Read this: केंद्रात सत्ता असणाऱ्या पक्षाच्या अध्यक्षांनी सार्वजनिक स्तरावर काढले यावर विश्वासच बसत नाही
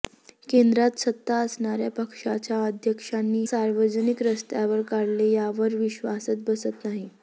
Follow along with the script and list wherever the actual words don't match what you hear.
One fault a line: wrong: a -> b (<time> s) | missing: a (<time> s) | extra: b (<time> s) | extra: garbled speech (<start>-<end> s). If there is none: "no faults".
no faults